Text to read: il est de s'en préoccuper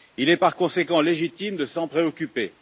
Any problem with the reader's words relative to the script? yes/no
yes